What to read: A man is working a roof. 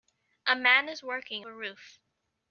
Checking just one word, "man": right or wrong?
right